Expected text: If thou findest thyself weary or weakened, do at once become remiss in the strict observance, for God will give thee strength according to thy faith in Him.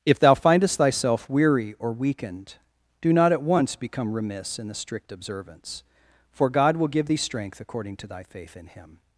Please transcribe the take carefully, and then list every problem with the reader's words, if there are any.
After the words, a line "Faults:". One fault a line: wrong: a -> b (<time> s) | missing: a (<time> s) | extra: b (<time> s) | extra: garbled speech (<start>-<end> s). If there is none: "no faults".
If thou findest thyself weary or weakened, do not at once become remiss in the strict observance, for God will give thee strength according to thy faith in Him.
Faults:
extra: not (3.1 s)